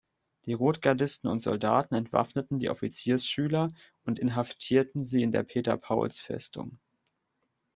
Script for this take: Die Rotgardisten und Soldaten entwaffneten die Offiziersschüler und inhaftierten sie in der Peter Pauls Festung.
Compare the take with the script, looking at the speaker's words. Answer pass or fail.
pass